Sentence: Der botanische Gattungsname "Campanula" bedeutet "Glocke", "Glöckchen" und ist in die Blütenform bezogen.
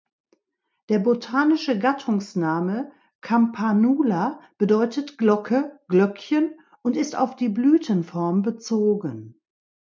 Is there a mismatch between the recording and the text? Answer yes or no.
yes